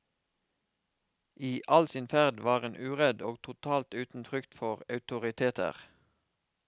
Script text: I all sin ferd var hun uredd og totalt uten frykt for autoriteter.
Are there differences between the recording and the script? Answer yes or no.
no